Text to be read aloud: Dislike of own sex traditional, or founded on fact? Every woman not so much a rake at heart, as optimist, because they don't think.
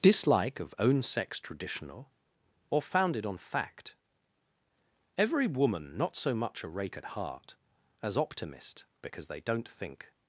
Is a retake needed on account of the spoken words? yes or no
no